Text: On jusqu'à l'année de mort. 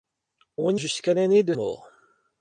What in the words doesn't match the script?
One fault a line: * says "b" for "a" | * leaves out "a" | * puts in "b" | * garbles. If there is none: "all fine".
all fine